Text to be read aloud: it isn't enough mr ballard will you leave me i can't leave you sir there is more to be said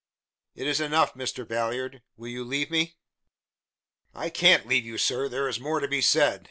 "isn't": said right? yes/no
no